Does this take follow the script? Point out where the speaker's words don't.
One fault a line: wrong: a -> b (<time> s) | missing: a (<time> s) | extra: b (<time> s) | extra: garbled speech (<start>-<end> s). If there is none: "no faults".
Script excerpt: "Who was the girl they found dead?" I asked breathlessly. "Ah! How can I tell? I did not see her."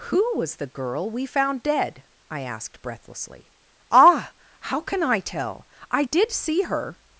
wrong: they -> we (1.1 s)
missing: not (6.3 s)